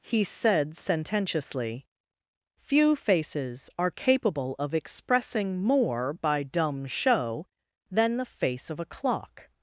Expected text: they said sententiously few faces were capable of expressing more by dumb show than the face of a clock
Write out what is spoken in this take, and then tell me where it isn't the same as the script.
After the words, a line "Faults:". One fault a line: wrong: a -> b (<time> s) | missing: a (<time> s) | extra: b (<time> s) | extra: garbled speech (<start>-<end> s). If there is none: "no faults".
he said sententiously few faces are capable of expressing more by dumb show than the face of a clock
Faults:
wrong: they -> he (0.0 s)
wrong: were -> are (3.8 s)